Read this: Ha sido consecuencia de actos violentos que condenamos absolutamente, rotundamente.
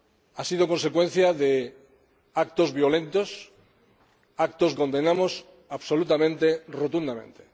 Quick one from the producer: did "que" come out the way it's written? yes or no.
no